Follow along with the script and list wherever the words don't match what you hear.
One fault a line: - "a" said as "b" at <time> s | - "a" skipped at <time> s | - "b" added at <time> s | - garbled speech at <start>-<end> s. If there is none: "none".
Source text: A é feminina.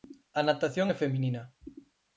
- "natación" added at 0.5 s